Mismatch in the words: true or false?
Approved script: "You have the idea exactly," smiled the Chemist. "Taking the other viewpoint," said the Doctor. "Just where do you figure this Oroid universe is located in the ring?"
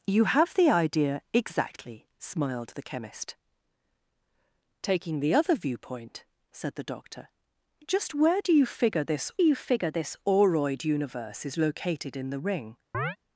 true